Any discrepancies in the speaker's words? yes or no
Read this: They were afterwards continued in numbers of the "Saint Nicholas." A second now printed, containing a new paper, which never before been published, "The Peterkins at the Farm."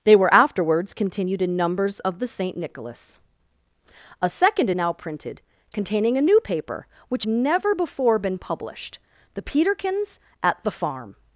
no